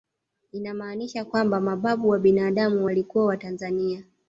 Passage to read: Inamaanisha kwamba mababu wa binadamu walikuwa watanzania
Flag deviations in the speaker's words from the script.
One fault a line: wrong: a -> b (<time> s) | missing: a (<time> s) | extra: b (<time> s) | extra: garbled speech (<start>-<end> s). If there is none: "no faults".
no faults